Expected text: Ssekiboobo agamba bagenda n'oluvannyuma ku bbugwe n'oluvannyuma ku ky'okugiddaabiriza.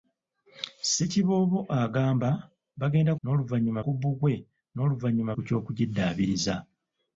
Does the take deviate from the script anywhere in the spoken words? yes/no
no